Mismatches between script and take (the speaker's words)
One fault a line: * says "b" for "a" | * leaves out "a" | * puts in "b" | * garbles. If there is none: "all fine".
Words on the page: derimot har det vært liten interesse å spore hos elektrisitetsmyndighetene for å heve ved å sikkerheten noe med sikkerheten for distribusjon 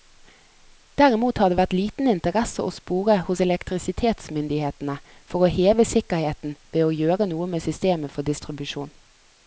* puts in "sikkerheten"
* says "gjøre" for "sikkerheten"
* says "systemet" for "sikkerheten"